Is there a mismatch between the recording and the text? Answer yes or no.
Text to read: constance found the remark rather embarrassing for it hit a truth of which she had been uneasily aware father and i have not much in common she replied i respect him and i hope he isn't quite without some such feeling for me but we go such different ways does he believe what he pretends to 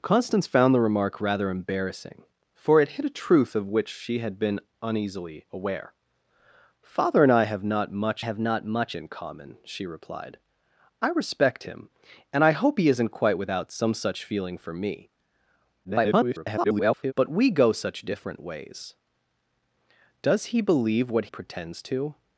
yes